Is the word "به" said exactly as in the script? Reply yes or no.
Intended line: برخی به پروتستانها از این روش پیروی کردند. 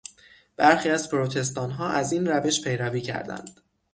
no